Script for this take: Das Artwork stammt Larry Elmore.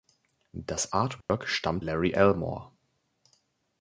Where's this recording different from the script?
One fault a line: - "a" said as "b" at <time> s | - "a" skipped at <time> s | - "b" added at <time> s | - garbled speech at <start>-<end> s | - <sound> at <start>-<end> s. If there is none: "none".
- dropout at 1.2-1.3 s